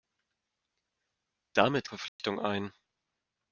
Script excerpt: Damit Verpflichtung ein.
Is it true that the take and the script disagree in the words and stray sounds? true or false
true